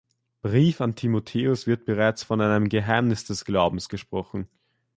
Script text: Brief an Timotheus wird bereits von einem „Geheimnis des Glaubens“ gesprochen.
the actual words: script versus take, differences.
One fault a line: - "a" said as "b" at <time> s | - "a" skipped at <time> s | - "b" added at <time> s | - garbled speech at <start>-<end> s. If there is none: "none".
none